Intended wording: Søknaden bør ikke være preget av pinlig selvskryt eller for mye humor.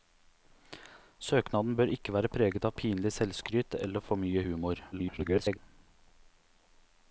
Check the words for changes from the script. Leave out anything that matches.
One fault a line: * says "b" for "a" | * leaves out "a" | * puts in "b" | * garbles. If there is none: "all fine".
* garbles